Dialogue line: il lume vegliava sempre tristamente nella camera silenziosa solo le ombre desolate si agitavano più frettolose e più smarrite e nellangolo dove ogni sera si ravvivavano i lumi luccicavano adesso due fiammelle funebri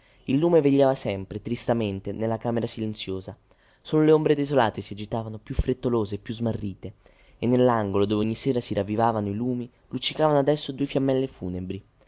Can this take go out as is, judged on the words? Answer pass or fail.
pass